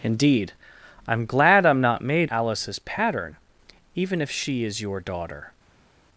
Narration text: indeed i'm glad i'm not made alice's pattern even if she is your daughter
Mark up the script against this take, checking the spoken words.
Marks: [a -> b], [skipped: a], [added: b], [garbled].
indeed i'm glad i'm not made alice's pattern even if she is your daughter